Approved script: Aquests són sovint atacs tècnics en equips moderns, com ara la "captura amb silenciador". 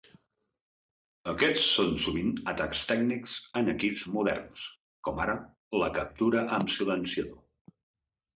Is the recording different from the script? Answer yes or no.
no